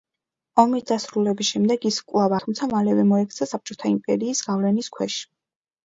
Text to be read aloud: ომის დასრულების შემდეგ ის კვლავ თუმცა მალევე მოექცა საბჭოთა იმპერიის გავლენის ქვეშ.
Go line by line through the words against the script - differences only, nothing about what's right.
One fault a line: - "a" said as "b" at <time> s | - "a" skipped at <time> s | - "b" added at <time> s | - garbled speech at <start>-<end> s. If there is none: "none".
none